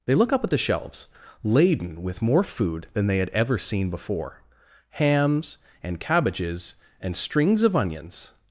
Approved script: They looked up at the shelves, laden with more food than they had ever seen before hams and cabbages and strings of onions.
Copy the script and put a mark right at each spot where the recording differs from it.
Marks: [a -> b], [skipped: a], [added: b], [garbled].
They [looked -> look] up at the shelves, laden with more food than they had ever seen before hams and cabbages and strings of onions.